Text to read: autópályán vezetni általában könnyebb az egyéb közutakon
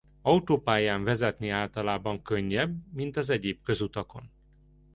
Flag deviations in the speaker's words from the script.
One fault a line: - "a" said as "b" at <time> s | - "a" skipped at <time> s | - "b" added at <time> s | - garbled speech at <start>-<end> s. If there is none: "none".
- "mint" added at 2.9 s